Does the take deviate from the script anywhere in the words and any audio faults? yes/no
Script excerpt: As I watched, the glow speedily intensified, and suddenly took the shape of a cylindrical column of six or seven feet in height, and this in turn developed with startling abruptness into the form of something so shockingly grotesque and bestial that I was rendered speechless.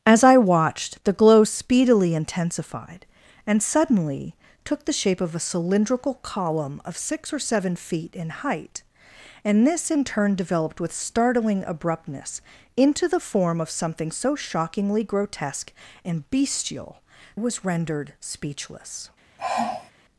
yes